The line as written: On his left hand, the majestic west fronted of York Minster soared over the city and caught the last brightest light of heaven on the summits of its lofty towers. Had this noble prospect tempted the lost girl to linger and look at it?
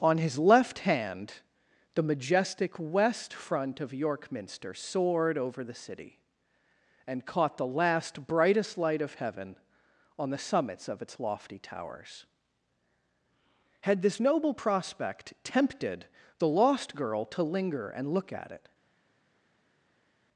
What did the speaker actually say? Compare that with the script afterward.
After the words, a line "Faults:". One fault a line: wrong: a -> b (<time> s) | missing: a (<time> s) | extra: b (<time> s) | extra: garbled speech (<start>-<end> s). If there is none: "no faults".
On his left hand, the majestic west front of York Minster soared over the city and caught the last brightest light of heaven on the summits of its lofty towers. Had this noble prospect tempted the lost girl to linger and look at it?
Faults:
wrong: fronted -> front (3.4 s)